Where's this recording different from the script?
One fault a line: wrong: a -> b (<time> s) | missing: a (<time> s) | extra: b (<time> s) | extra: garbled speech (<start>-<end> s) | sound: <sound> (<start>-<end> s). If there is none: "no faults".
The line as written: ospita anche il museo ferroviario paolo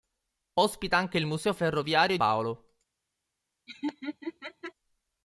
sound: laugh (3.7-4.7 s)